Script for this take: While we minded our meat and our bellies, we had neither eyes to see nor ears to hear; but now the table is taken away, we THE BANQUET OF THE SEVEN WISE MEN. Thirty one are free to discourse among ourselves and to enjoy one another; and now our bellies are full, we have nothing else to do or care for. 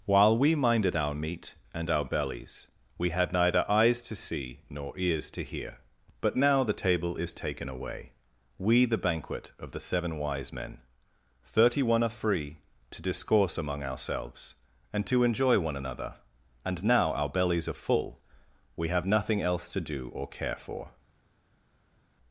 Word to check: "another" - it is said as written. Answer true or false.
true